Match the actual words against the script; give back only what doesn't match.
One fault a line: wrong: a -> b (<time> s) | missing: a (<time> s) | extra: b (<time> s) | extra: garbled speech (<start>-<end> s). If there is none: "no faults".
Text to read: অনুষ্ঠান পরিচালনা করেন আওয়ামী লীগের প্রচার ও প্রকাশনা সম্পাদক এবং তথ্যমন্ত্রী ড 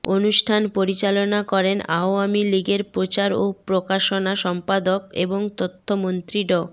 no faults